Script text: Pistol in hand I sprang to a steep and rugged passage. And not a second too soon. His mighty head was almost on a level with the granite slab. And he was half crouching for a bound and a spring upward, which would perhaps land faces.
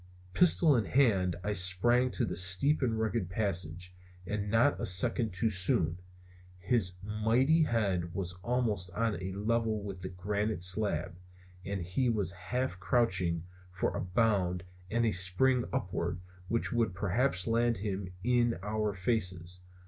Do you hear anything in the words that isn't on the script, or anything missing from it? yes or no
yes